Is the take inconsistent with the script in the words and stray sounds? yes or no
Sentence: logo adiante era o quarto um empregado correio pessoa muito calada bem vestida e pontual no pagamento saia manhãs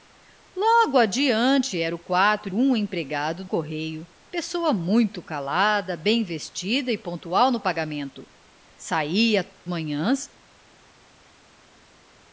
no